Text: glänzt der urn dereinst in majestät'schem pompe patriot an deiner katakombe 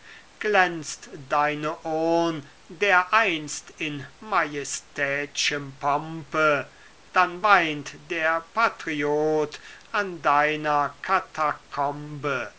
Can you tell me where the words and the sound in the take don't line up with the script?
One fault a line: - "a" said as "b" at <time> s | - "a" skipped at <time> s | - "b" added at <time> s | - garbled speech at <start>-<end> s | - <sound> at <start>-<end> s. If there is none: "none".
- "der" said as "deine" at 1.1 s
- "dann weint der" added at 7.1 s